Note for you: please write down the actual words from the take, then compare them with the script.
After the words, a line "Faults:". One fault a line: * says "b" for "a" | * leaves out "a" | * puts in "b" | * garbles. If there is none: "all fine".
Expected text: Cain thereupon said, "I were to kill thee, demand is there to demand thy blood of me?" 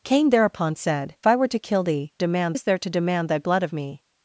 Cain thereupon said, "I were to kill thee, demand is there to demand thy blood of me?"
Faults:
all fine